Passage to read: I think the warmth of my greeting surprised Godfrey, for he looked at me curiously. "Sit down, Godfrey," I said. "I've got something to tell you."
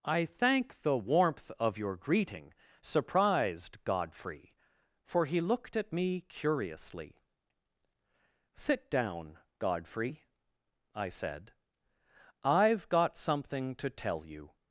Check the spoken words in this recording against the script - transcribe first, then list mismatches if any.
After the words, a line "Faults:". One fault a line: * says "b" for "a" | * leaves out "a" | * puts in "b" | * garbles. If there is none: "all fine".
I thank the warmth of your greeting surprised Godfrey, for he looked at me curiously. "Sit down, Godfrey," I said. "I've got something to tell you."
Faults:
* says "thank" for "think"
* says "your" for "my"